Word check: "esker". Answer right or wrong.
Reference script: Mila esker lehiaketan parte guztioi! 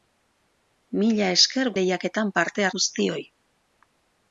right